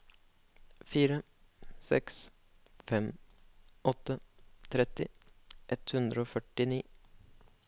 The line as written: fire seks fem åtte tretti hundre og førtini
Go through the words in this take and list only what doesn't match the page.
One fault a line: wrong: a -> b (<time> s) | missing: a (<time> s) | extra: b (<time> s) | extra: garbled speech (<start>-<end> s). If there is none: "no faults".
extra: ett (5.8 s)